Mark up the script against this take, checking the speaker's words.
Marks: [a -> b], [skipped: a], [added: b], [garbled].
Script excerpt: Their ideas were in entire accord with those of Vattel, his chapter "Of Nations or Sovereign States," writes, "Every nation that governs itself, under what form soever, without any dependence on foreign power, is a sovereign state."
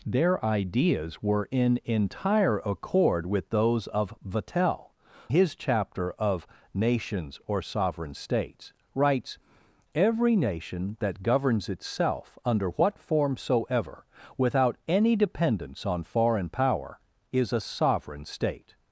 Their ideas were in entire accord with those of Vattel, his chapter "Of Nations or Sovereign States," writes, "Every nation that governs itself, under what form soever, without any dependence on foreign power, is a sovereign state."